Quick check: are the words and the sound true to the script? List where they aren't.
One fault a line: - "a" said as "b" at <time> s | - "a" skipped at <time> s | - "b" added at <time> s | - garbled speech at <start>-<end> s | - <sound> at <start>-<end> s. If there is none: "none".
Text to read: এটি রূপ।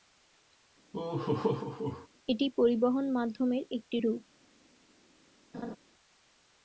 - laugh at 0.9-2.1 s
- "পরিবহন মাধ্যমের একটি" added at 2.6 s
- laugh at 5.5-5.8 s